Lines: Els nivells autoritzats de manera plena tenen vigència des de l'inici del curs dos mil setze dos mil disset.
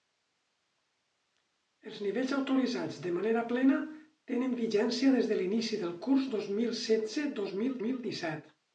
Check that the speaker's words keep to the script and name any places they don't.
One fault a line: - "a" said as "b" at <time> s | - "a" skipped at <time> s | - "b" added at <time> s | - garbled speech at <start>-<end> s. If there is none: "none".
- "mil" added at 7.8 s